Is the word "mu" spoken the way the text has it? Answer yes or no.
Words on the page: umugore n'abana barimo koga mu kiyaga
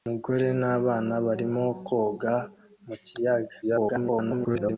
yes